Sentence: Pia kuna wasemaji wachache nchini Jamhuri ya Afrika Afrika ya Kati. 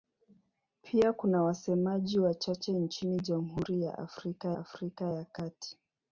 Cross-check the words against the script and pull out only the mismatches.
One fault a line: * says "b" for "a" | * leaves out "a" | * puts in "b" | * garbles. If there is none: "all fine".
all fine